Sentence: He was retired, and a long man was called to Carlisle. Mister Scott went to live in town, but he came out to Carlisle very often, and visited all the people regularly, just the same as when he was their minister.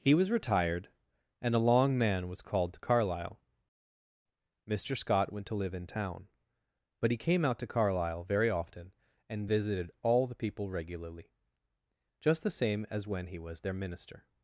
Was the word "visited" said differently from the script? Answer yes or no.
no